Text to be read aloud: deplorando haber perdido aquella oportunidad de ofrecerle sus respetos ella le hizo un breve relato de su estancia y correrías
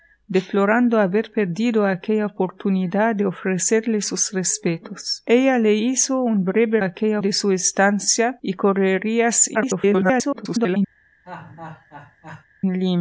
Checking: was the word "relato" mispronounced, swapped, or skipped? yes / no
yes